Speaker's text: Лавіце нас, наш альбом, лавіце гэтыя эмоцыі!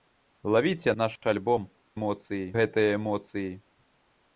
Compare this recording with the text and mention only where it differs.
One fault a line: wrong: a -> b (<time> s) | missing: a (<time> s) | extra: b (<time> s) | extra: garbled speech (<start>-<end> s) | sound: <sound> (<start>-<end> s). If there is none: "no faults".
missing: нас (0.9 s)
wrong: лавіце -> эмоцыі (2.0 s)